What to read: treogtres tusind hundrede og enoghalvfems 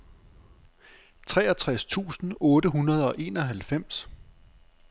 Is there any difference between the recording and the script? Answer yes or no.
yes